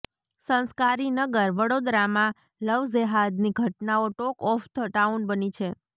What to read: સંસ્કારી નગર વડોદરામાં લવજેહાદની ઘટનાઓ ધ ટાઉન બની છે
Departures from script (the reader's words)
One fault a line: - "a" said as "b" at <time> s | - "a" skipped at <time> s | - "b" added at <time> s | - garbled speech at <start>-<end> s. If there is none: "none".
- "ટોક ઓફ" added at 4.1 s